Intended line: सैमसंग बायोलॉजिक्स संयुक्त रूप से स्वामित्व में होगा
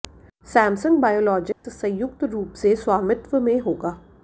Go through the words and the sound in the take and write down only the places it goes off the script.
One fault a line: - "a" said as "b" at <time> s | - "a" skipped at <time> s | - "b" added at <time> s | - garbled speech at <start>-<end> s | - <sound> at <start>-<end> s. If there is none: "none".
- dropout at 1.5-1.6 s